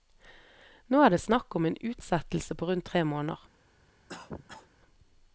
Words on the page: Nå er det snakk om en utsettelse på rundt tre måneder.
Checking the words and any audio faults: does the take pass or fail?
fail